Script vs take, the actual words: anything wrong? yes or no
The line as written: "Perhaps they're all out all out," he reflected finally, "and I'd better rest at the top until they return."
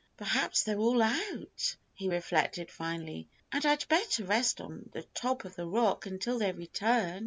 yes